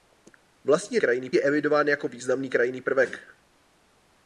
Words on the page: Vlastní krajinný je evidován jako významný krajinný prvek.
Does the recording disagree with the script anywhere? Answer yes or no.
no